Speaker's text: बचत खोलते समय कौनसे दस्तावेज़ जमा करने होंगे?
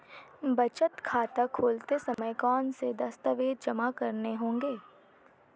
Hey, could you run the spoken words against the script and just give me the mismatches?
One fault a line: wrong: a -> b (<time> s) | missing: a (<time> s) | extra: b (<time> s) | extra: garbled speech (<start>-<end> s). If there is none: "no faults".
extra: खाता (1.1 s)